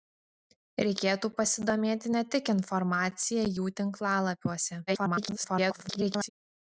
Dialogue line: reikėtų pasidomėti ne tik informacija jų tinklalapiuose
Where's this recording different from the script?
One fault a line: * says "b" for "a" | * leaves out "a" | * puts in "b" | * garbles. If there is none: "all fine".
* garbles